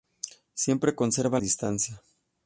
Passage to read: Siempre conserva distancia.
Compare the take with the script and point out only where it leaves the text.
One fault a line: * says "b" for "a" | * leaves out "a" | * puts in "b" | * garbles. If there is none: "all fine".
all fine